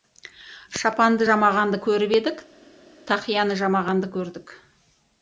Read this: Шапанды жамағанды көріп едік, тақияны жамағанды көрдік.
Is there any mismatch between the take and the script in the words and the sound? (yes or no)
no